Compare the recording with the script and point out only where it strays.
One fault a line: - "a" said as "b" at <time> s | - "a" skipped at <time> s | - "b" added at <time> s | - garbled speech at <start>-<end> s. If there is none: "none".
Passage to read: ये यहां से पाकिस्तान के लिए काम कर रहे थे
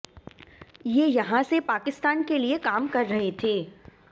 none